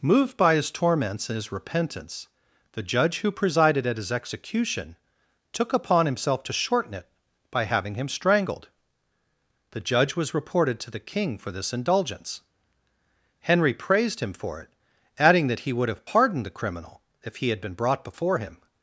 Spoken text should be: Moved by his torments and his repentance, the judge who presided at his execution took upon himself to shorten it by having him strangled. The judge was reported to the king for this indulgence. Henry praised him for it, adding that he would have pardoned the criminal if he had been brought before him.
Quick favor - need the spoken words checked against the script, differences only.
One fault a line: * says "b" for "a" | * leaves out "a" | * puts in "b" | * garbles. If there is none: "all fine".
all fine